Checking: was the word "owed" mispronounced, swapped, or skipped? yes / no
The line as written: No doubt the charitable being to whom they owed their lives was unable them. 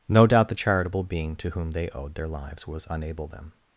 no